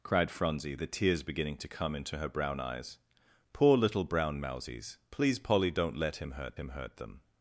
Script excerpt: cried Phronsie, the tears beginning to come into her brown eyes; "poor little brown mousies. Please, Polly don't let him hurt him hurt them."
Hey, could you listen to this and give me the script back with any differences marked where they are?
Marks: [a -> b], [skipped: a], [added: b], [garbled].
cried Phronsie, the tears beginning to come into her brown eyes; "poor little brown mousies. Please, Polly don't let him hurt him hurt them."